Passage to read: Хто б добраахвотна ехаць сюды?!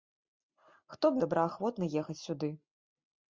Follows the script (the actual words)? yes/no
yes